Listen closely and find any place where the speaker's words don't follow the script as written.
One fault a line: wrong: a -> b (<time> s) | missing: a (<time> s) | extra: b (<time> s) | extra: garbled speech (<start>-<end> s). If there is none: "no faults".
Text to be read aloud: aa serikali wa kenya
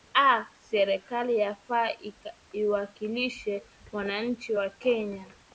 extra: yafaa iwakilishe wananchi (1.4 s)